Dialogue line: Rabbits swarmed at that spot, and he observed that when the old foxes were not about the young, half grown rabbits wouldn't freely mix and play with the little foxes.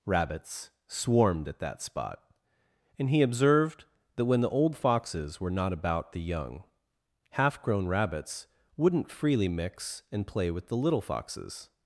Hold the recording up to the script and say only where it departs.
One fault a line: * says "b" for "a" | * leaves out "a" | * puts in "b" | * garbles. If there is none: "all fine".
all fine